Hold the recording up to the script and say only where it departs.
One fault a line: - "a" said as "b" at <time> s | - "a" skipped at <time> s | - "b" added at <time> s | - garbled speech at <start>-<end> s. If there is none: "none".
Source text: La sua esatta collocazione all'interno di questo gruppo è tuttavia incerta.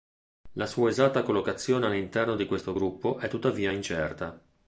none